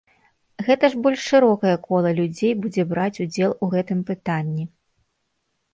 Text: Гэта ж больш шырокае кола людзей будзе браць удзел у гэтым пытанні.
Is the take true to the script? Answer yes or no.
yes